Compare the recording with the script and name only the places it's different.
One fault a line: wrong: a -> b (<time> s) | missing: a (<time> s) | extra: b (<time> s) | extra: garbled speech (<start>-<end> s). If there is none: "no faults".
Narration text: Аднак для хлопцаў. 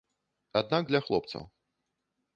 no faults